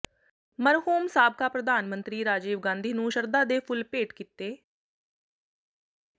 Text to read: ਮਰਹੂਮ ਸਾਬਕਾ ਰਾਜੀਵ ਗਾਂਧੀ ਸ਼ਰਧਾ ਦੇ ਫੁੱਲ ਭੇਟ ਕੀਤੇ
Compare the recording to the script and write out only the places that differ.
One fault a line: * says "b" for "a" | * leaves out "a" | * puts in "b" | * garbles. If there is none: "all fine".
* puts in "ਪ੍ਰਧਾਨ ਮੰਤਰੀ"
* puts in "ਨੂੰ"